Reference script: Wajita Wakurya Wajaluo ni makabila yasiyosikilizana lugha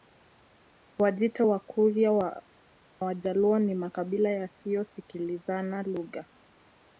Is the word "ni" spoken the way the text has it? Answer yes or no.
yes